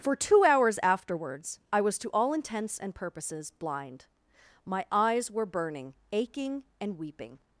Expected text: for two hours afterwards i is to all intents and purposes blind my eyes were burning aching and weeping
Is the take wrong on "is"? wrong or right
wrong